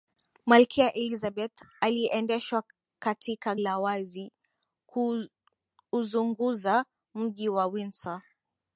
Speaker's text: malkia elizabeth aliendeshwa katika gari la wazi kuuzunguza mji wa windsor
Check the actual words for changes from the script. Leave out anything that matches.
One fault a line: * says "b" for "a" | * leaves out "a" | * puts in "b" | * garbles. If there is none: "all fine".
* leaves out "gari"